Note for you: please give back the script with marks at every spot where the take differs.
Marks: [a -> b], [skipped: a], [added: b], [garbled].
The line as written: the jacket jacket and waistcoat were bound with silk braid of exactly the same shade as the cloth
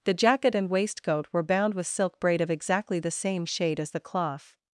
the jacket [skipped: jacket] and waistcoat were bound with silk braid of exactly the same shade as the cloth